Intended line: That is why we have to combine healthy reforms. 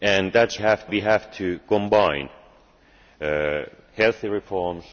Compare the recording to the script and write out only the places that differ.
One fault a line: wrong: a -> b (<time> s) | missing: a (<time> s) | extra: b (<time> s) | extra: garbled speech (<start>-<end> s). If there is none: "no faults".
wrong: why -> have (0.6 s)